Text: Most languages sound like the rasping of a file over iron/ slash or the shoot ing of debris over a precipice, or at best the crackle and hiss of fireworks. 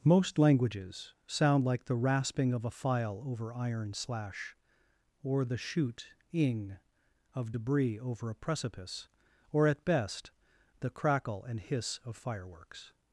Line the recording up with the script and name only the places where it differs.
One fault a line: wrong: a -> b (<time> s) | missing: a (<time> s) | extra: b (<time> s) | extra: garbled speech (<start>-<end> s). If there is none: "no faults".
no faults